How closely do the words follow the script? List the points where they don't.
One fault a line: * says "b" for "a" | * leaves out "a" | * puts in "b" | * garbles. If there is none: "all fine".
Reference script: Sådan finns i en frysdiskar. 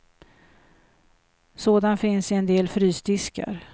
* puts in "del"